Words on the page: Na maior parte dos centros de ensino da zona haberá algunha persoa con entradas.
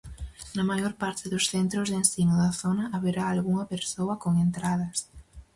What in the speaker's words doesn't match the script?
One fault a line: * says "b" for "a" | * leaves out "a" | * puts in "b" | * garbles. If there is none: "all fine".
all fine